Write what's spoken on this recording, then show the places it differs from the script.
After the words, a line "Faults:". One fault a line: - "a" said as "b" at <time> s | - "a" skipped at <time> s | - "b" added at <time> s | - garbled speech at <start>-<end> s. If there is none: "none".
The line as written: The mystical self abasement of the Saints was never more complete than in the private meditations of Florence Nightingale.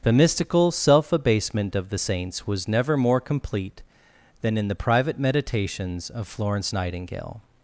The mystical self abasement of the Saints was never more complete than in the private meditations of Florence Nightingale.
Faults:
none